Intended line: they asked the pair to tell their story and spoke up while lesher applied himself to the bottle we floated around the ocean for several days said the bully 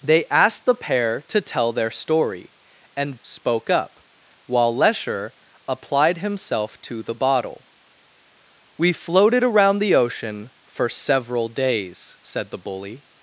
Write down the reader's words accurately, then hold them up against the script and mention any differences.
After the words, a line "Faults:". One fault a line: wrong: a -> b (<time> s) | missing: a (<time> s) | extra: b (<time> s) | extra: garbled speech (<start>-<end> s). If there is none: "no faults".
they asked the pair to tell their story and spoke up while lesher applied himself to the bottle we floated around the ocean for several days said the bully
Faults:
no faults